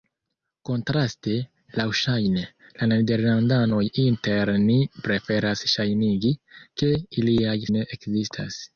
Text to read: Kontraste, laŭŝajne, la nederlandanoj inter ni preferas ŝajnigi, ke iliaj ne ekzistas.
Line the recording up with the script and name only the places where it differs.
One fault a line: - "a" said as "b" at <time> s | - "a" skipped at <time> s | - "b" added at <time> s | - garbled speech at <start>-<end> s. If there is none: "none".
none